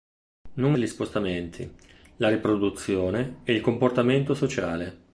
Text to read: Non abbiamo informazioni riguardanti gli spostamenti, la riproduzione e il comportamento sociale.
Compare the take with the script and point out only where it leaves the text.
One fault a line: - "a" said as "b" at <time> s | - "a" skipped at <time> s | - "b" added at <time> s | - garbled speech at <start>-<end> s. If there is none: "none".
- "abbiamo informazioni riguardanti" skipped at 0.8 s